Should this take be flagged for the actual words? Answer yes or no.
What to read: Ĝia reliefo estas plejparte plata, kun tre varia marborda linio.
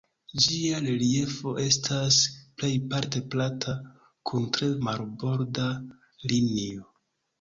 yes